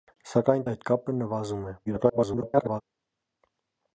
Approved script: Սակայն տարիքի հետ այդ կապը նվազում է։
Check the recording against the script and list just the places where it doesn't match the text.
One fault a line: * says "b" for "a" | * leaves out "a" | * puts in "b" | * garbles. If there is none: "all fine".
* leaves out "տարիքի հետ"
* garbles